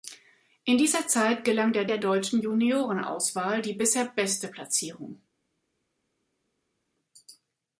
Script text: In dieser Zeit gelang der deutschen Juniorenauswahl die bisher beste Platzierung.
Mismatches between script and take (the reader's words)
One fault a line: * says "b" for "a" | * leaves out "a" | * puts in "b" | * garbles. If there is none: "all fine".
* puts in "der"